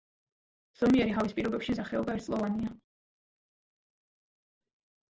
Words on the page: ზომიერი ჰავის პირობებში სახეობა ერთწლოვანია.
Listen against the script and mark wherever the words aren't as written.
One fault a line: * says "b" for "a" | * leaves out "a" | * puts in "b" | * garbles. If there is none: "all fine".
all fine